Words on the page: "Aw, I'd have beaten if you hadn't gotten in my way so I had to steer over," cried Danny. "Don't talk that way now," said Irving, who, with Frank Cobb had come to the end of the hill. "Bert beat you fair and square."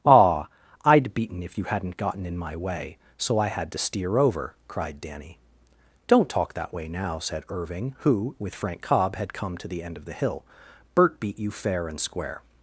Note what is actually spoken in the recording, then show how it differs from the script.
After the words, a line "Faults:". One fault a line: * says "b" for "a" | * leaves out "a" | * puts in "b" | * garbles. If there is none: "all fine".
"Aw, I'd beaten if you hadn't gotten in my way so I had to steer over," cried Danny. "Don't talk that way now," said Irving, who, with Frank Cobb had come to the end of the hill. "Bert beat you fair and square."
Faults:
* leaves out "have"